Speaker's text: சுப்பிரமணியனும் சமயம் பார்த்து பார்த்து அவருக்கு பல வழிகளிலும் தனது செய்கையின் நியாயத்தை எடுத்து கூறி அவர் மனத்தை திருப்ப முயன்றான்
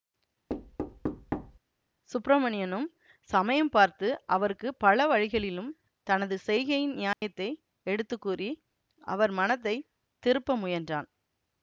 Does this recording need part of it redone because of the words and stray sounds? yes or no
yes